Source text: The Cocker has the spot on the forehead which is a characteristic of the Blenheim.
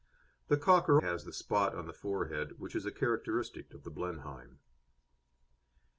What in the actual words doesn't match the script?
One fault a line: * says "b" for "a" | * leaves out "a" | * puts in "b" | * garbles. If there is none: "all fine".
all fine